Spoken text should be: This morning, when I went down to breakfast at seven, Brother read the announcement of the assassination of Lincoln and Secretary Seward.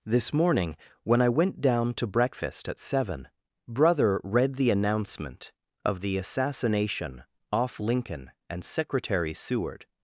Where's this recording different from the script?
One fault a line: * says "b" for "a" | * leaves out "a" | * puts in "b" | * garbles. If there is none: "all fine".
* says "off" for "of"